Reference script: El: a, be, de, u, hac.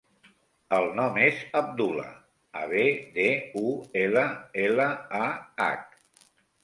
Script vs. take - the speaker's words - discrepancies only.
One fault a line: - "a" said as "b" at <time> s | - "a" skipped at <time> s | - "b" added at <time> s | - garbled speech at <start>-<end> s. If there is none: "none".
- "nom és Abdullah" added at 1.0 s
- "ela ela a" added at 4.0 s